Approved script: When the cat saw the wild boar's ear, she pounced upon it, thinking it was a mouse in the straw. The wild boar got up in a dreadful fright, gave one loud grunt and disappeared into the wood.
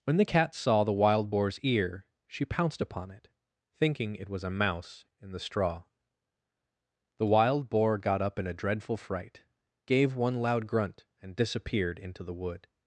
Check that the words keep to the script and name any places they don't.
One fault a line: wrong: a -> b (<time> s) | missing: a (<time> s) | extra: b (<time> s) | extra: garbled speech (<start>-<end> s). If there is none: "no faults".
no faults